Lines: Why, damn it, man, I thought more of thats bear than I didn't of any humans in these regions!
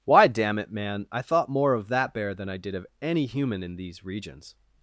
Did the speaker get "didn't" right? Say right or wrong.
wrong